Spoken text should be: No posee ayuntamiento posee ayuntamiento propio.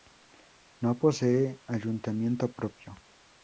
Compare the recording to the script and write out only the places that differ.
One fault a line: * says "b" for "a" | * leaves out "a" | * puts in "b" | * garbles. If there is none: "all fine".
* leaves out "posee ayuntamiento"